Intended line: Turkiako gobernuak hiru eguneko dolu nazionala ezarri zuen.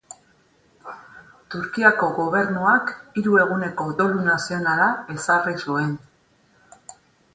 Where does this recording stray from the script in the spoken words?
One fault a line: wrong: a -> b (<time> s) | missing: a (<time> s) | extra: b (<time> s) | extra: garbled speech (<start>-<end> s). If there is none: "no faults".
no faults